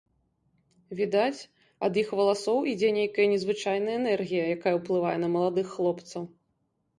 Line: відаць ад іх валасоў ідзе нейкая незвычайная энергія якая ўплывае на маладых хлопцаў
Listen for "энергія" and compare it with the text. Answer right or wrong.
right